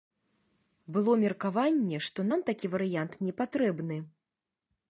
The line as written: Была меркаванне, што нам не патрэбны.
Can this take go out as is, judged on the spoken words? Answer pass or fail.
fail